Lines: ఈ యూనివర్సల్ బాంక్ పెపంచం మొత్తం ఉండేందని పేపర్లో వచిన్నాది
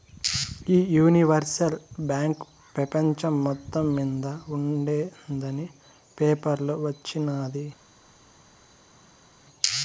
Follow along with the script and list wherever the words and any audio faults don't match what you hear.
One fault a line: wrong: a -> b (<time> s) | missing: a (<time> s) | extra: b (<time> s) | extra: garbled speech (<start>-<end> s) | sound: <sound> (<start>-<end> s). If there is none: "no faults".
extra: మింద (4.0 s)